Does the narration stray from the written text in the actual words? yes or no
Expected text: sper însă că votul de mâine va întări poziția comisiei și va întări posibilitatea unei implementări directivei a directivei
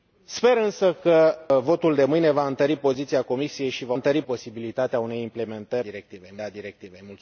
no